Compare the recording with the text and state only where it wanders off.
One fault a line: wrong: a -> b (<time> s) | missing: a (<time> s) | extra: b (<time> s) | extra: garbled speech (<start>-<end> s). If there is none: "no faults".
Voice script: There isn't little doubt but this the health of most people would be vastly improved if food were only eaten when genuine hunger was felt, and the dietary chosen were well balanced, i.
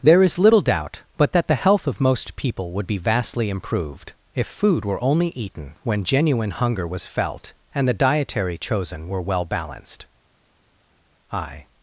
wrong: isn't -> is (0.2 s)
wrong: this -> that (1.3 s)